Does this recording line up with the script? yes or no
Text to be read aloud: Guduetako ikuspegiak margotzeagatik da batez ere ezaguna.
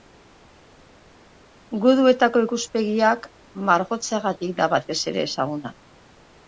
yes